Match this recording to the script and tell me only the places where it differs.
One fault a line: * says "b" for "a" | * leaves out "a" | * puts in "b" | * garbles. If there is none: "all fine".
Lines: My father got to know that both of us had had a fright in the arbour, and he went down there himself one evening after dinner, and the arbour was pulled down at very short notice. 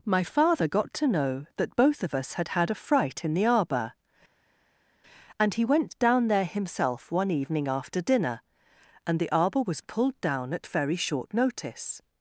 all fine